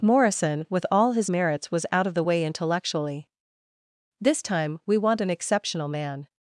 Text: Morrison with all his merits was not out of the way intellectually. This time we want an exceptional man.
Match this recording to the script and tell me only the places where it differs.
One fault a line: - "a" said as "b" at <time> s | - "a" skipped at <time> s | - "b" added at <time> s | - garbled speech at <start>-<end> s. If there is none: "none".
- "not" skipped at 1.9 s